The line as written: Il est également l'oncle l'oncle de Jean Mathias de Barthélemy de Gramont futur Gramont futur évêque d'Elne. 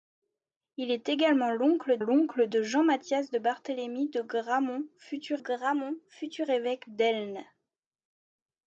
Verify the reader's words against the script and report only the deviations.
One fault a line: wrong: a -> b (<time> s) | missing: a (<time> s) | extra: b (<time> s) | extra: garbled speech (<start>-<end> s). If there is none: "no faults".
no faults